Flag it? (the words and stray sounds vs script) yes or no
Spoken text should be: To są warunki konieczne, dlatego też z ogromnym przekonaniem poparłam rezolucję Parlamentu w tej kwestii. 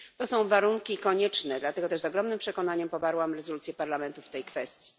no